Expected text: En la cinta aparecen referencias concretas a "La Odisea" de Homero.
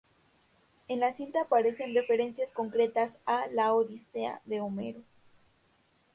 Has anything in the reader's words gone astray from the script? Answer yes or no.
no